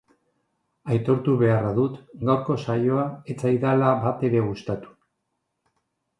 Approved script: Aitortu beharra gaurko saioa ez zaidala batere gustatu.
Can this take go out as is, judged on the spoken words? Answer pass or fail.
fail